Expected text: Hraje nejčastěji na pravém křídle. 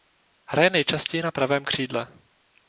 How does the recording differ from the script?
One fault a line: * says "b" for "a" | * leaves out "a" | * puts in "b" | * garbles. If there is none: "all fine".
all fine